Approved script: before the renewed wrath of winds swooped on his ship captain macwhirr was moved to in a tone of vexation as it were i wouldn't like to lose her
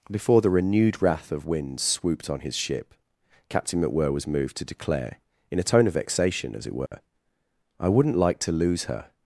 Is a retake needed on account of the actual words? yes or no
yes